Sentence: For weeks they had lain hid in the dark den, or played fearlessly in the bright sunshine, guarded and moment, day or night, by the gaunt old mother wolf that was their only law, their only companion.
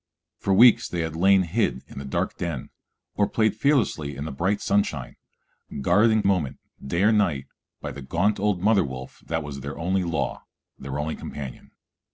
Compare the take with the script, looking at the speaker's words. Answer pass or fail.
pass